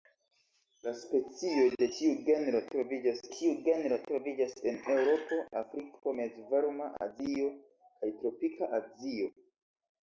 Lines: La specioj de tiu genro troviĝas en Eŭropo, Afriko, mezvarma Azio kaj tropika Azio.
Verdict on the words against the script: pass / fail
fail